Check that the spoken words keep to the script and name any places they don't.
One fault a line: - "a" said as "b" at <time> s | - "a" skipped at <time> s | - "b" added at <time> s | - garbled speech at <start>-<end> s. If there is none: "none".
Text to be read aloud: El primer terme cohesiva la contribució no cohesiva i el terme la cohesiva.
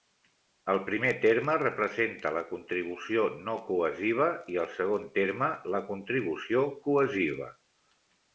- "cohesiva" said as "representa" at 1.6 s
- "segon" added at 4.8 s
- "contribució" added at 5.9 s